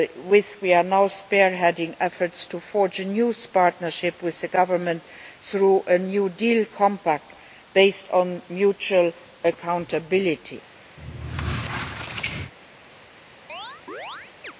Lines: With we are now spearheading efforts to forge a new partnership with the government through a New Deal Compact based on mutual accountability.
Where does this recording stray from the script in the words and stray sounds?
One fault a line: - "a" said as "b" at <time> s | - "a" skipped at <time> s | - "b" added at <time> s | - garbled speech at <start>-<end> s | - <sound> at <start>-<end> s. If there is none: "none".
- squeak at 11.0-12.5 s
- chirp at 13.5-14.5 s